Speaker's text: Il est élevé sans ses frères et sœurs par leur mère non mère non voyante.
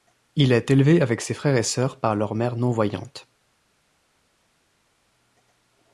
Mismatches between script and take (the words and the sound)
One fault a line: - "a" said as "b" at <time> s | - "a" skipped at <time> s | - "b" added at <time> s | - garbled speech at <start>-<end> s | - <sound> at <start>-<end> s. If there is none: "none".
- "sans" said as "avec" at 1.0 s
- "mère non" skipped at 2.7 s